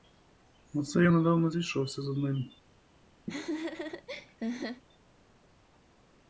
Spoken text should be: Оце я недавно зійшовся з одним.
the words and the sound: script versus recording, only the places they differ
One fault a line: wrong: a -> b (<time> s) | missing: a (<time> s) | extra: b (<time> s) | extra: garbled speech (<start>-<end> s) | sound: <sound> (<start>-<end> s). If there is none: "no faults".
sound: laugh (3.3-4.8 s)